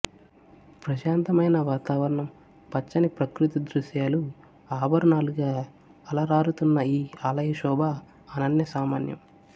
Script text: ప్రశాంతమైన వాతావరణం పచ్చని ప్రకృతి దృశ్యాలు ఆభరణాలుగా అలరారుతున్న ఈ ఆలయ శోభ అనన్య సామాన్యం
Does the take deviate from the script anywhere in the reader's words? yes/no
no